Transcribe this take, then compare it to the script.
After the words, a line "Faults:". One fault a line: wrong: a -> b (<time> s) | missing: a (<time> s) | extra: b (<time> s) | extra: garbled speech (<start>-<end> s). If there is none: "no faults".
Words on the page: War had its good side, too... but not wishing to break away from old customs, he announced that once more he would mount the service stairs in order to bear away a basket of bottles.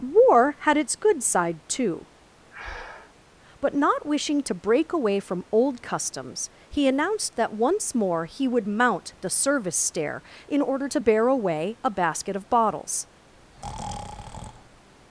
War had its good side, too... but not wishing to break away from old customs, he announced that once more he would mount the service stair in order to bear away a basket of bottles.
Faults:
wrong: stairs -> stair (9.8 s)